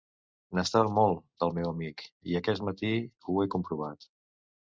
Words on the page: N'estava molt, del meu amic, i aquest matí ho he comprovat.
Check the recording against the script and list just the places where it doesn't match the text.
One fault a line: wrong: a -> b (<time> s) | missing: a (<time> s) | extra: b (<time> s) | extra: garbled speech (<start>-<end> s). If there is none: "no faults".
no faults